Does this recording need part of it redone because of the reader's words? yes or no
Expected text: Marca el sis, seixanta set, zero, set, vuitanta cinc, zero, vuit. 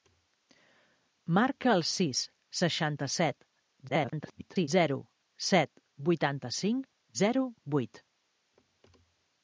yes